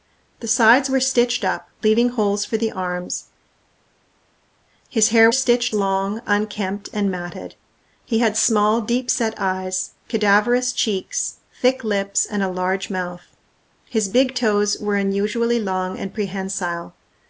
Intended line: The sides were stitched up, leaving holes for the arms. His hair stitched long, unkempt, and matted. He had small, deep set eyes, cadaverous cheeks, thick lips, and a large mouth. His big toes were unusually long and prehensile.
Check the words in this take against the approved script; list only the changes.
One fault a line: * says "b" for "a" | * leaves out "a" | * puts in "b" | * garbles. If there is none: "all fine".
all fine